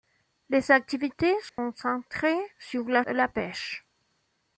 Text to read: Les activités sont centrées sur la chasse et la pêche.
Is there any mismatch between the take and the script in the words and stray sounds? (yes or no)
yes